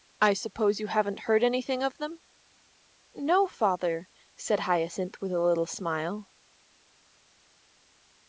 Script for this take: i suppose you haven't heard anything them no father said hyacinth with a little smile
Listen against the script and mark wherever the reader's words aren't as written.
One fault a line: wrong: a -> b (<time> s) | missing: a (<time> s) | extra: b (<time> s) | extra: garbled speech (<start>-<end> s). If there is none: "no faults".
extra: of (1.8 s)